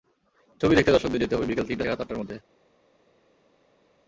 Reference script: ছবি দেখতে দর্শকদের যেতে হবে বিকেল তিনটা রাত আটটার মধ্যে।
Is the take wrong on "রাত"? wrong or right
right